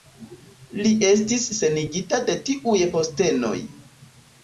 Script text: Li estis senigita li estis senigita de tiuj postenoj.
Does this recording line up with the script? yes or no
no